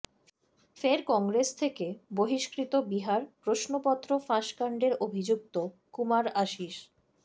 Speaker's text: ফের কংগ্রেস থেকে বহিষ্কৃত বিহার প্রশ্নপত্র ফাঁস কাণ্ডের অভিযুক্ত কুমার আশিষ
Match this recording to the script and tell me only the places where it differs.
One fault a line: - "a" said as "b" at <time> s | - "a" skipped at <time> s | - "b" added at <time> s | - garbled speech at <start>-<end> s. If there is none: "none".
none